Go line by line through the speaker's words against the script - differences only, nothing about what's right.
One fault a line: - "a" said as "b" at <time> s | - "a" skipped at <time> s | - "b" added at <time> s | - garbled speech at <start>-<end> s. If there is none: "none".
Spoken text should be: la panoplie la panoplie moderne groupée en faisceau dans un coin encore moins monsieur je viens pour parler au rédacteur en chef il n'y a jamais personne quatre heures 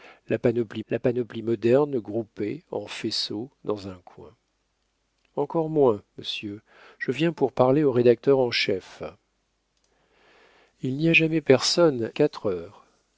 none